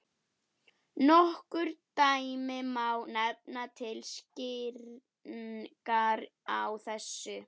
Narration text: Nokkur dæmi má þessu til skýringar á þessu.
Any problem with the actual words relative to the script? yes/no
yes